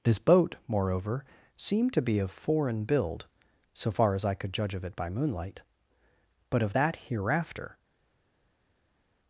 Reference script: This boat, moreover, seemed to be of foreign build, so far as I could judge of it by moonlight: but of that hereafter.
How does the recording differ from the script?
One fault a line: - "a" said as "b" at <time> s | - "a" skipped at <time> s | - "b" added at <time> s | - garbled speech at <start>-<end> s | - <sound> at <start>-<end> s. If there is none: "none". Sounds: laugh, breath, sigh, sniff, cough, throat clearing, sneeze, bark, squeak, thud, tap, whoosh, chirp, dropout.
none